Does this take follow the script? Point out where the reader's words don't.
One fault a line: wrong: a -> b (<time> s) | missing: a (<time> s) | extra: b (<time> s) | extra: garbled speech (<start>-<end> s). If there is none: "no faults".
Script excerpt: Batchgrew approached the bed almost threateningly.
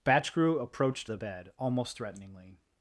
no faults